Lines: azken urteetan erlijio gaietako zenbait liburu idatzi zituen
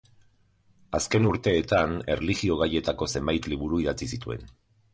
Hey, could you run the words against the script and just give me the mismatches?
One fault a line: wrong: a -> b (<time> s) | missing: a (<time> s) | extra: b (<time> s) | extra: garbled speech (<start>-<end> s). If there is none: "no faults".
no faults